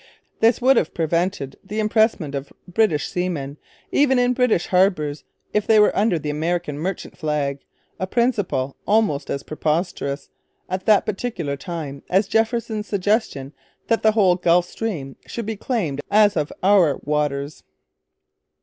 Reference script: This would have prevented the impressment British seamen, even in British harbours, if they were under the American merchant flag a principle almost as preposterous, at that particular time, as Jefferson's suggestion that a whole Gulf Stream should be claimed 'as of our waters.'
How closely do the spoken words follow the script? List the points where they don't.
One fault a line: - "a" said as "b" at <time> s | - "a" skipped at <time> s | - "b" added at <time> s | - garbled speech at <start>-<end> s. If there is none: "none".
- "of" added at 2.3 s
- "a" said as "the" at 14.0 s